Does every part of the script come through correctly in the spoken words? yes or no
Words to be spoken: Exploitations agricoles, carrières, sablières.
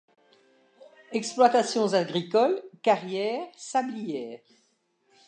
yes